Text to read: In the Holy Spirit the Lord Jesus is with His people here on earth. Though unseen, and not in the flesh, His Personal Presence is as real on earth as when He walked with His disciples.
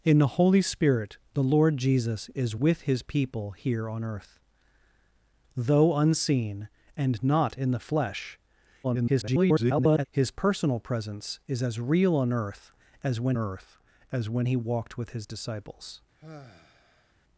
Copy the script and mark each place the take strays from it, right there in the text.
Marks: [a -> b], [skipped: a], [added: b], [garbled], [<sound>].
In the Holy Spirit the Lord Jesus is with His people here on earth. Though unseen, and not in the flesh, [garbled] His Personal Presence is as real on earth as when [added: earth as when] He walked with His disciples. [sigh]